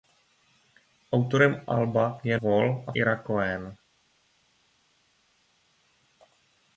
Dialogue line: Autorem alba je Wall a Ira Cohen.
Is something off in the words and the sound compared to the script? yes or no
no